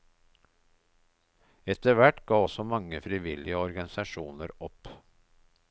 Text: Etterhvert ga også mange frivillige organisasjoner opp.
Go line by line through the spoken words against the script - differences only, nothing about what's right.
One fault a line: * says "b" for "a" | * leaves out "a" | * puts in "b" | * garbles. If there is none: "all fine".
all fine